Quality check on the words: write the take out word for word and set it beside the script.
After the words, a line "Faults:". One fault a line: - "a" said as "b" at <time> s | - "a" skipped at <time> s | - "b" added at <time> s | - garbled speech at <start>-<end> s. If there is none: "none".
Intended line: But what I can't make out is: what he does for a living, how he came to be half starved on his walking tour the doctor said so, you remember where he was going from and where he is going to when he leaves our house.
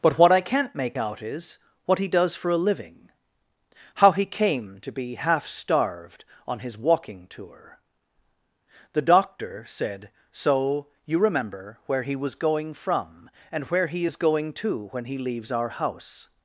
But what I can't make out is: what he does for a living, how he came to be half starved on his walking tour the doctor said so, you remember where he was going from and where he is going to when he leaves our house.
Faults:
none